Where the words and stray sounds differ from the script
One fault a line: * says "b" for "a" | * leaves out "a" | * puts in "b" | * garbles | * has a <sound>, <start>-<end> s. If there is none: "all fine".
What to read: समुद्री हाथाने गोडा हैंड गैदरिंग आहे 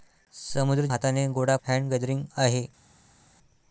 all fine